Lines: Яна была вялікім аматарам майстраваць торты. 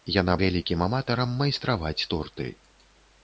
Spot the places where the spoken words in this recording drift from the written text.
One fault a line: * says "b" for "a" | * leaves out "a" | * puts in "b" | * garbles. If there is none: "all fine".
* leaves out "была"